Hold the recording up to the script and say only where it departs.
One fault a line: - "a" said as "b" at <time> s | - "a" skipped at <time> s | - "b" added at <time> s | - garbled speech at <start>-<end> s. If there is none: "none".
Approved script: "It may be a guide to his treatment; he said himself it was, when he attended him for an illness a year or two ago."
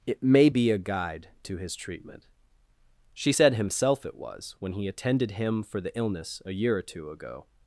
- "he" said as "she" at 3.1 s
- "an" said as "the" at 5.8 s